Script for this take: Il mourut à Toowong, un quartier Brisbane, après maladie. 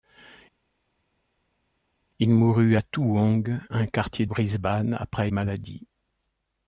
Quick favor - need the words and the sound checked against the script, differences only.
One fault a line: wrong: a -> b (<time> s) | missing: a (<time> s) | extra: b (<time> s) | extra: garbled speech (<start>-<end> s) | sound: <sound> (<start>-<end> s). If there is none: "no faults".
no faults